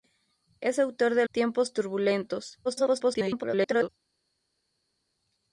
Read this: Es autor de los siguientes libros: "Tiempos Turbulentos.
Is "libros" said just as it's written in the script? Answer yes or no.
no